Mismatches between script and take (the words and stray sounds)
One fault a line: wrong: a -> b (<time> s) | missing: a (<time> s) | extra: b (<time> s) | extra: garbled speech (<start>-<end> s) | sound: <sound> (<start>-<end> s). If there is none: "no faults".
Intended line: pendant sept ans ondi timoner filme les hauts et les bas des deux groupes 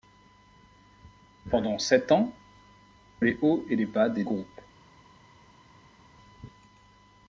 missing: ondi timoner filme (2.3 s)
missing: deux (4.2 s)